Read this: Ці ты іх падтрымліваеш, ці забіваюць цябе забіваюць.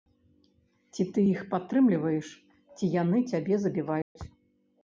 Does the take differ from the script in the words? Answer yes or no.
yes